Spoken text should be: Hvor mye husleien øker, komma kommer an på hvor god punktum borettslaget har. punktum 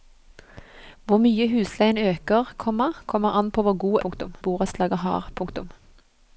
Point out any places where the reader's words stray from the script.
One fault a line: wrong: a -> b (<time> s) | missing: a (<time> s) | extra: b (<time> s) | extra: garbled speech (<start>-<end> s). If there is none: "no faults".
no faults